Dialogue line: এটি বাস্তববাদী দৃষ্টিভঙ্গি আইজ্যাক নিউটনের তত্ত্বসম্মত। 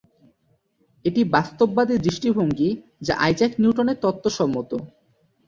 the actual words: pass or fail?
fail